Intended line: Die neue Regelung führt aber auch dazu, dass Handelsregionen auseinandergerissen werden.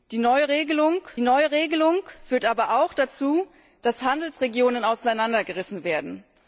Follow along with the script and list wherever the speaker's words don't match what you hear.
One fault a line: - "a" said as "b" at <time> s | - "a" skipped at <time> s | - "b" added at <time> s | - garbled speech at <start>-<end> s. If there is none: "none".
- "neue Regelung" added at 1.2 s